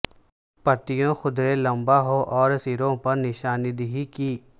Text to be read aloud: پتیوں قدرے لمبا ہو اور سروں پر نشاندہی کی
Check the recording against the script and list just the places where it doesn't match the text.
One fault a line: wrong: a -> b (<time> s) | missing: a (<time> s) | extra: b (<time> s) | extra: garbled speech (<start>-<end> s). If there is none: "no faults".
no faults